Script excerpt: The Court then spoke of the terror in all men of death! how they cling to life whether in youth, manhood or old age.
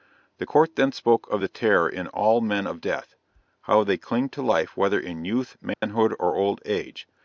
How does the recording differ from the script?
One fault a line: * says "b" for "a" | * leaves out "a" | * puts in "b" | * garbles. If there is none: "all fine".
all fine